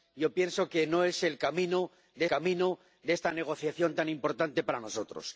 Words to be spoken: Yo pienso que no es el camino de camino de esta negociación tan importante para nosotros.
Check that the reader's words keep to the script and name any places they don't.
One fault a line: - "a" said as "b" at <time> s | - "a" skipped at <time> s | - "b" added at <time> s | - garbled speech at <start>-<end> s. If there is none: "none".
none